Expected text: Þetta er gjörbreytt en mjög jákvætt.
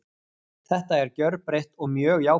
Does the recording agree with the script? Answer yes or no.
no